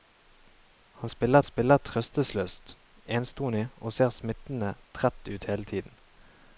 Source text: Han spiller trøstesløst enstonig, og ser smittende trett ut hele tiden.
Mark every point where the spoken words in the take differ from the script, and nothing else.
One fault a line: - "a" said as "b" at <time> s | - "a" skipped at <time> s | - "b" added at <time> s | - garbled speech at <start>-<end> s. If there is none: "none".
- "spiller" added at 1.4 s